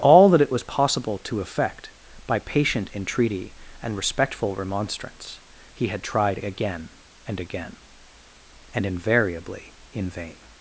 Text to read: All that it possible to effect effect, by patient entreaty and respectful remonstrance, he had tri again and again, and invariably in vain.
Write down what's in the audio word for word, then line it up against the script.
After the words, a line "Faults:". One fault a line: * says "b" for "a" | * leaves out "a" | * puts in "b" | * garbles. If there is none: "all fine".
All that it was possible to effect, by patient entreaty and respectful remonstrance, he had tried again and again, and invariably in vain.
Faults:
* puts in "was"
* leaves out "effect"
* says "tried" for "tri"